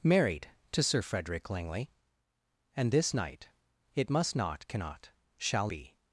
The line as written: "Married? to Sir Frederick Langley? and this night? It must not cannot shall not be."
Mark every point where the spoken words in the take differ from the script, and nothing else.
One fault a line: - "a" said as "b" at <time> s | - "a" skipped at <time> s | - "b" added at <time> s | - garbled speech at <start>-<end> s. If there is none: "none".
- "not" skipped at 5.7 s